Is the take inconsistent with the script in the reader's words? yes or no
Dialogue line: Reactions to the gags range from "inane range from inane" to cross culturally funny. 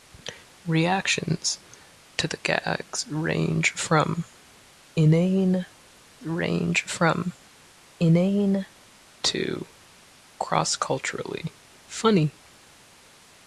no